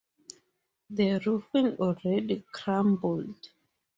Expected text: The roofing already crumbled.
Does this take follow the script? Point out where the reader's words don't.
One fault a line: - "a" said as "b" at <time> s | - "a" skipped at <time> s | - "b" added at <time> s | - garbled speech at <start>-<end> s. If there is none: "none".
none